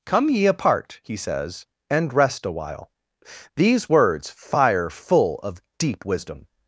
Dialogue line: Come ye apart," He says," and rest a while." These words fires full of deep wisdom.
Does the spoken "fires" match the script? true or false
false